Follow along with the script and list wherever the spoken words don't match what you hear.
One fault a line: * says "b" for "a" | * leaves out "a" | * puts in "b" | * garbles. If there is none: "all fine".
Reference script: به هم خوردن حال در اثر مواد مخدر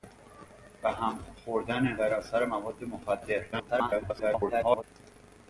* leaves out "حال"
* garbles